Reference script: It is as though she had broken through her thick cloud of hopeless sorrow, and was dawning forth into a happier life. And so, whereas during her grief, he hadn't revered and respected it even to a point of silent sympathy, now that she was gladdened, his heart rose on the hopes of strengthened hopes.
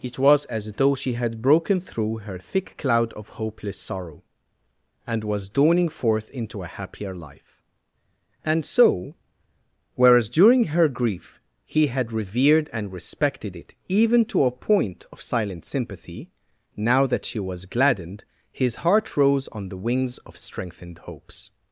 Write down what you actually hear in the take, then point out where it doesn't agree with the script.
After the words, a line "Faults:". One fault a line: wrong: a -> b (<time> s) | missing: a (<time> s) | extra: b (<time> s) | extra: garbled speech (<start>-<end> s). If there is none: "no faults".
It was as though she had broken through her thick cloud of hopeless sorrow, and was dawning forth into a happier life. And so, whereas during her grief, he had revered and respected it even to a point of silent sympathy, now that she was gladdened, his heart rose on the wings of strengthened hopes.
Faults:
wrong: is -> was (0.2 s)
wrong: hadn't -> had (11.9 s)
wrong: hopes -> wings (19.8 s)